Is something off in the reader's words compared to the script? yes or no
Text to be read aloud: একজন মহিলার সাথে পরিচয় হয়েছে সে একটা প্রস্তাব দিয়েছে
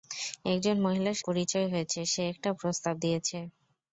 yes